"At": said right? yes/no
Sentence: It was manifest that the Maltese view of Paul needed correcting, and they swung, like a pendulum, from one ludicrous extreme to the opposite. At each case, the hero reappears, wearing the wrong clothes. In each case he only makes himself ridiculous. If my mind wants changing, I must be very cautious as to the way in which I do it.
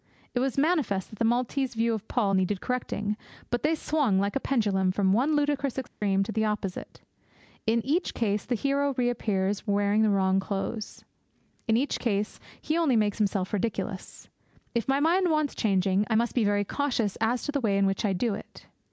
no